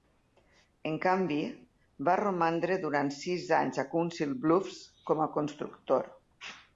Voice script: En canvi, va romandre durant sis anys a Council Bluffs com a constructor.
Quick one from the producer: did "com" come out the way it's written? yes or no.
yes